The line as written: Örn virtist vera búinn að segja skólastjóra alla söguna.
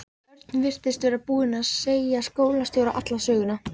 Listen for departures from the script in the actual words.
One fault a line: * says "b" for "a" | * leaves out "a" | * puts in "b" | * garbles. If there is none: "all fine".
all fine